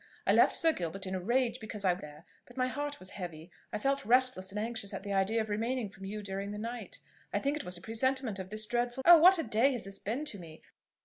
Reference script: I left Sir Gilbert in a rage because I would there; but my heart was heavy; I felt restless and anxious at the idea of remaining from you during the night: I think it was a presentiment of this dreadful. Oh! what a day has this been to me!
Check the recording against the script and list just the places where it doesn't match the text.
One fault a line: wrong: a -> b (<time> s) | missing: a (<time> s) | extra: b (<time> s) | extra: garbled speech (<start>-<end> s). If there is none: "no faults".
no faults